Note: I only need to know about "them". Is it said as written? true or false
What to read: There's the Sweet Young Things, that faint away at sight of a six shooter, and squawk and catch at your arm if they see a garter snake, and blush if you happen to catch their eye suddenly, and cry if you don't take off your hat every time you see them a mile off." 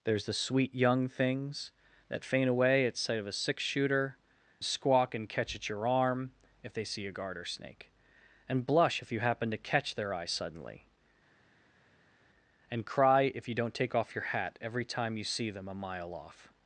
true